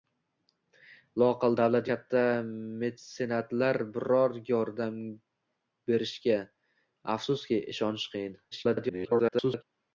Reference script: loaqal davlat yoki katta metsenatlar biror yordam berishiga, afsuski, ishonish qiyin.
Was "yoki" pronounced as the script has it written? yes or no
no